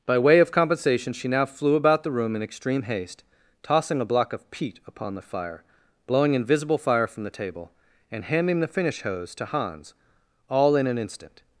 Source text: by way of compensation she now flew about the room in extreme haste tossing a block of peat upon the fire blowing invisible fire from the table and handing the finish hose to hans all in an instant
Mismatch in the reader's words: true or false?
false